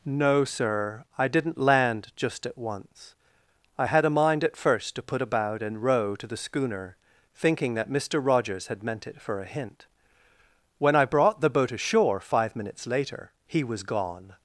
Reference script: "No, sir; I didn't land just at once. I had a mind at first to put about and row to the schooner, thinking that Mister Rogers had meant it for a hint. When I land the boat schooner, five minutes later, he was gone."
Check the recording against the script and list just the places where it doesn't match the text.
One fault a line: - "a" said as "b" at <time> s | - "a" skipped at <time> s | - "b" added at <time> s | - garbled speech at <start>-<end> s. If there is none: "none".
- "land" said as "brought" at 11.0 s
- "schooner" said as "ashore" at 11.7 s